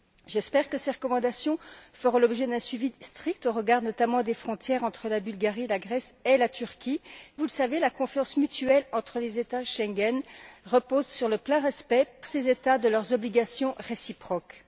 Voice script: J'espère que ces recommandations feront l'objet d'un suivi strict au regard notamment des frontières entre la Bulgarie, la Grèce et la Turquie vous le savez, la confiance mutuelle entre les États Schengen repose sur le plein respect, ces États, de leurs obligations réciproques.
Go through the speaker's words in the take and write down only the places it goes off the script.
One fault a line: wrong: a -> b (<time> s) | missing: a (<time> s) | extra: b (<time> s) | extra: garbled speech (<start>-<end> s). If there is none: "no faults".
no faults